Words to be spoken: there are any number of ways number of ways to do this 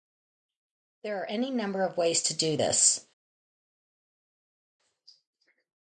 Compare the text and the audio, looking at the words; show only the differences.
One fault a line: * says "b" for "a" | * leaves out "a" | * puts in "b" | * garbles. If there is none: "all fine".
* leaves out "number of ways"